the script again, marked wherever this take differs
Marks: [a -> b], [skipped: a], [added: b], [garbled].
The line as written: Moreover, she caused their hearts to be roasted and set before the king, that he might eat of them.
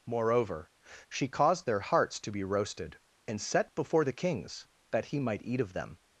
Moreover, she caused their hearts to be roasted and set before the [king, -> kings] that he might eat of them.